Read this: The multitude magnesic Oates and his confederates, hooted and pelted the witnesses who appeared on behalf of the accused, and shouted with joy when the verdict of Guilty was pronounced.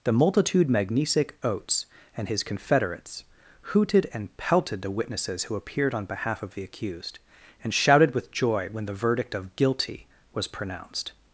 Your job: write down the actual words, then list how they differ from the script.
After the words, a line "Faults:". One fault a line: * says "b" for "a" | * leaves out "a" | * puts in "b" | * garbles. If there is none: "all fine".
The multitude magnesic Oates and his confederates, hooted and pelted the witnesses who appeared on behalf of the accused, and shouted with joy when the verdict of Guilty was pronounced.
Faults:
all fine